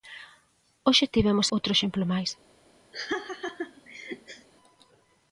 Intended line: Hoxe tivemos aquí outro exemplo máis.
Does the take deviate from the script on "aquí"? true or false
true